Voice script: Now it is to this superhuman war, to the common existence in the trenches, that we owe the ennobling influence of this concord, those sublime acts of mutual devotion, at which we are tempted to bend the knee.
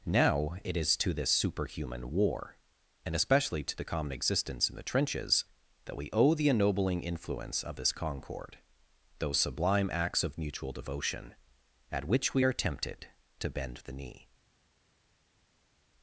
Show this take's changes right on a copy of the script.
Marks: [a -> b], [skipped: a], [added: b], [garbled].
Now it is to this superhuman war, [added: and especially] to the common existence in the trenches, that we owe the ennobling influence of this concord, those sublime acts of mutual devotion, at which we are tempted to bend the knee.